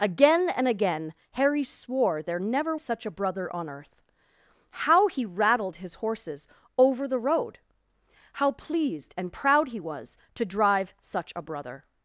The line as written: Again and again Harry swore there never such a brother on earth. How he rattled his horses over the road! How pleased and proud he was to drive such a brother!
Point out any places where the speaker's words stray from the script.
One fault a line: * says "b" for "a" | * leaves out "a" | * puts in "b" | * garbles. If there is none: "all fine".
all fine